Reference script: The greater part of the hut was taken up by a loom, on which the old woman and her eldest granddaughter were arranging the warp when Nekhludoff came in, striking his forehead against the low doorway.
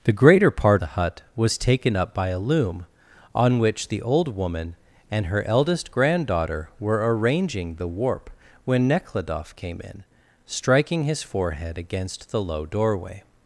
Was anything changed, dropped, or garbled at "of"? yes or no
yes